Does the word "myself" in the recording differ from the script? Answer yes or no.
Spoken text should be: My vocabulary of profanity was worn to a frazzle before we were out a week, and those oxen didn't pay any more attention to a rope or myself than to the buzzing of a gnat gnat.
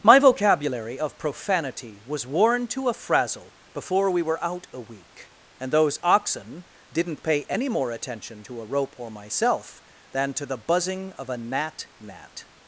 no